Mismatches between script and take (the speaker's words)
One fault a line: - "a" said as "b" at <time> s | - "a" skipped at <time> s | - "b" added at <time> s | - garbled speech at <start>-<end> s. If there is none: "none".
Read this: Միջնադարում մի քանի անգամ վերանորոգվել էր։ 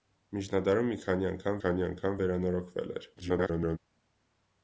- "քանի անգամ" added at 1.6 s
- garbled speech at 3.2-3.8 s